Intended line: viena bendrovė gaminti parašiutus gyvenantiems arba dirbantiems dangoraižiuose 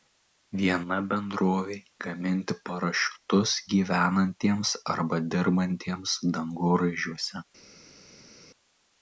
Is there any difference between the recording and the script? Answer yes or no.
no